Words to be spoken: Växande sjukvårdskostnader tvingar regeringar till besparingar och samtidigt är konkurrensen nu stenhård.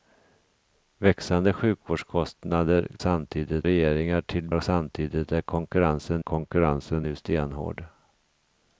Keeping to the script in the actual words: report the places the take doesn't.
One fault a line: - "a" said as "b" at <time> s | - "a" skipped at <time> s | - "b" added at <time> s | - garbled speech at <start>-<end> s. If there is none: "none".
- "tvingar" said as "samtidigt" at 3.0 s
- "besparingar" skipped at 4.5 s
- "konkurrensen" added at 6.2 s